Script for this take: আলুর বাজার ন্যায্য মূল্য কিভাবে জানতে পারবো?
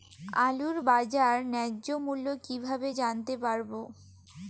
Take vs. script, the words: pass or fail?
pass